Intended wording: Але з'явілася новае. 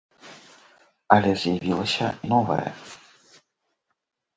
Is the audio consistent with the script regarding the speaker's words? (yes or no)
yes